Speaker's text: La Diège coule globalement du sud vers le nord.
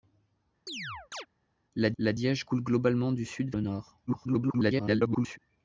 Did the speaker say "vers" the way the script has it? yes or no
no